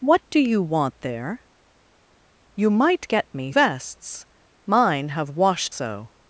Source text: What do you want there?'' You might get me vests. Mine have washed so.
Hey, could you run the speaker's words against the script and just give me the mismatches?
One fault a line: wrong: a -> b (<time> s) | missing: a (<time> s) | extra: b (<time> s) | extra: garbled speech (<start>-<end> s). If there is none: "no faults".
no faults